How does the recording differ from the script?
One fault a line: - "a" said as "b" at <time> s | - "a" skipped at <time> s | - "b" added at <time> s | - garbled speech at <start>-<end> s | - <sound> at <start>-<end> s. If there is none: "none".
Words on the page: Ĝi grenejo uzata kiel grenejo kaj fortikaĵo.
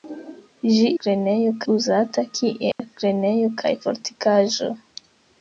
- dropout at 2.7-2.8 s